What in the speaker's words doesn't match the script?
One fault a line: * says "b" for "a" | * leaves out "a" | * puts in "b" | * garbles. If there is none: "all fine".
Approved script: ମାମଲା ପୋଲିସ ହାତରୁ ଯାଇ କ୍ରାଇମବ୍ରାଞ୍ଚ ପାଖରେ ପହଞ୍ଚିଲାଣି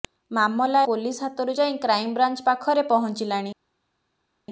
all fine